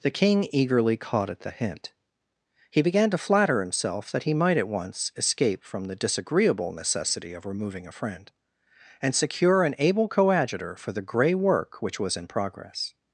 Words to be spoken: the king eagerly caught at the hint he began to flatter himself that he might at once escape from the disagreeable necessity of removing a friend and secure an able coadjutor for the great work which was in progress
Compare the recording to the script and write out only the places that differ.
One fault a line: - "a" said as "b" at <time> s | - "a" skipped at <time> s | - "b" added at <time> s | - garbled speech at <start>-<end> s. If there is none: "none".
- "great" said as "grey" at 11.0 s